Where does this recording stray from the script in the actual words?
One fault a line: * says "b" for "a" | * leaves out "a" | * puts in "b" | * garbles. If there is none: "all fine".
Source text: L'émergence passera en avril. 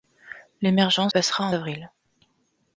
all fine